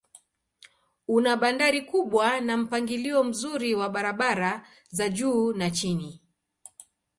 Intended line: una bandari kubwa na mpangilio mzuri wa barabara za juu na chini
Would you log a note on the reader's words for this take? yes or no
no